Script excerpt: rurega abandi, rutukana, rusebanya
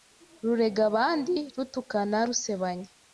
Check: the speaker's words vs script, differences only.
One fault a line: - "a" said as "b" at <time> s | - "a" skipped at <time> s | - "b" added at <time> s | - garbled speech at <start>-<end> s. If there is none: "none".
none